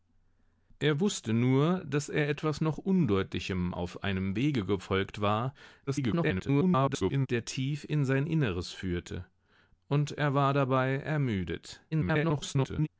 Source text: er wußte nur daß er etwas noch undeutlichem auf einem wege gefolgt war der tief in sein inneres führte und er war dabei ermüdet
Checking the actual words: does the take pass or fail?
fail